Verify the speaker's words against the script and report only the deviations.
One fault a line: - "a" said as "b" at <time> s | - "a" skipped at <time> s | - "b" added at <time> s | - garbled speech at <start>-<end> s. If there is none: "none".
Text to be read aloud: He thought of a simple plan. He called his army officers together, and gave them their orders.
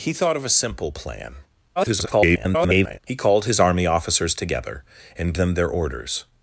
- garbled speech at 1.8-3.0 s
- "gave" skipped at 5.3 s